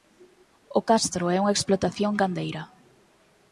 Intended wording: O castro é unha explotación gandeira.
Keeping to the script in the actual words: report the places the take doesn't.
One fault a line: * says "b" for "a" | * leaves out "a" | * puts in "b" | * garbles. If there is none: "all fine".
all fine